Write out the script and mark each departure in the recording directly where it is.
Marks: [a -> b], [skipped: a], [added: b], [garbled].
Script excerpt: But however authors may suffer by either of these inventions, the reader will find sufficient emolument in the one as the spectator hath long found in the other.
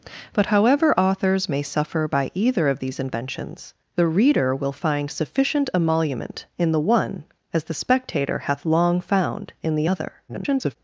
But however authors may suffer by either of these inventions, the reader will find sufficient emolument in the one as the spectator hath long found in the other. [garbled]